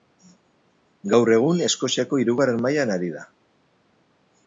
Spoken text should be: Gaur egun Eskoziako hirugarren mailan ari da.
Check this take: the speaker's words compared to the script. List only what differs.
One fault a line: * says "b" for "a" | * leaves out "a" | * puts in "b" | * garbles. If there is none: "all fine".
all fine